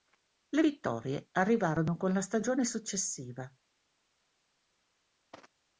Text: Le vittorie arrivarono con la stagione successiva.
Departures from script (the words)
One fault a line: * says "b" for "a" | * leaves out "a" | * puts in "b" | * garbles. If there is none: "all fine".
all fine